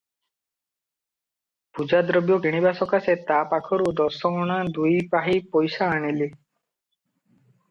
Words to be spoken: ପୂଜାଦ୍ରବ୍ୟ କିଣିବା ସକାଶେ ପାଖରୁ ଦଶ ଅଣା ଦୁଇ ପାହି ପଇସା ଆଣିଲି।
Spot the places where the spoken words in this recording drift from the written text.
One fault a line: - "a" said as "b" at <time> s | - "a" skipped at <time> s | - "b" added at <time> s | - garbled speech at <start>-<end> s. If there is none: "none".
- "ତା" added at 3.2 s